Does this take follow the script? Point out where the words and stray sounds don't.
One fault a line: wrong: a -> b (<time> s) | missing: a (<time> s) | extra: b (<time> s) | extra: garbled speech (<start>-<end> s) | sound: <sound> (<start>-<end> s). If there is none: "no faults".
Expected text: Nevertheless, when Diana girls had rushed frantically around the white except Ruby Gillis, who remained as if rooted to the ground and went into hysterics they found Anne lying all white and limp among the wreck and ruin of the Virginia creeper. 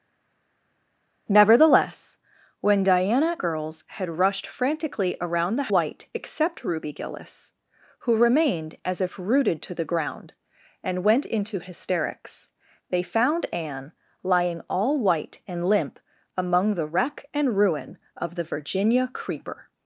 no faults